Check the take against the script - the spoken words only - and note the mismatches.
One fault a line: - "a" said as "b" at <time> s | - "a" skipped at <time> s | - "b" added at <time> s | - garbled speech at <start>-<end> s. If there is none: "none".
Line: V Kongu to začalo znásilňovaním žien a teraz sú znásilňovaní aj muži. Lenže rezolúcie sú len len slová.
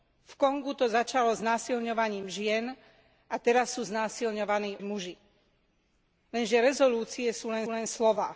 none